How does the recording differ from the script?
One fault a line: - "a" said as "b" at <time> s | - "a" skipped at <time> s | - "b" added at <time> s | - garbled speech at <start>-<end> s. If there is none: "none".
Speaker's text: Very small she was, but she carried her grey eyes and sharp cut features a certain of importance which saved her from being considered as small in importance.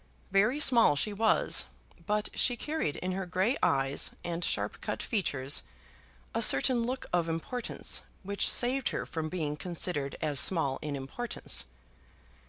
- "in" added at 2.9 s
- "look" added at 6.8 s